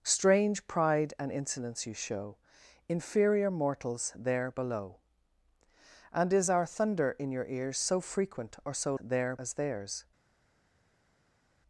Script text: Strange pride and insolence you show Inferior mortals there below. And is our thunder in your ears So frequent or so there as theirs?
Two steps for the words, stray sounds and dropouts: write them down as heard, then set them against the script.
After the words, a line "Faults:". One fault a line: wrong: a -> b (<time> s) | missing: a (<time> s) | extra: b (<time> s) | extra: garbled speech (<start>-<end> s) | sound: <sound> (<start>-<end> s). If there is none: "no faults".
Strange pride and insolence you show Inferior mortals there below. And is our thunder in your ears So frequent or so there as theirs?
Faults:
no faults